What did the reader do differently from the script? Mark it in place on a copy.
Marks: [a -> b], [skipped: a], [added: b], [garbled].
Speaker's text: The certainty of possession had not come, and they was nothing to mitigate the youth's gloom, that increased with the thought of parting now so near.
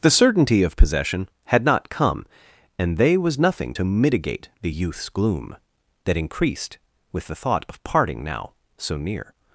The certainty of possession had not come, and they was nothing to mitigate the youth's gloom, that increased with the thought of parting now so near.